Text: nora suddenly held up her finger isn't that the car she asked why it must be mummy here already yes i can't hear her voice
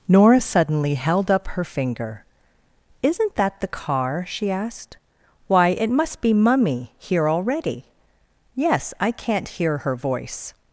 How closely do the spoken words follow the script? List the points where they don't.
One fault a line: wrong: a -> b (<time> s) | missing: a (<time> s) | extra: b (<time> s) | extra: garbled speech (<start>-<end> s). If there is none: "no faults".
no faults